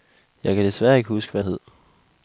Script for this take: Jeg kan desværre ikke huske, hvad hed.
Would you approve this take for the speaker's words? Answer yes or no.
yes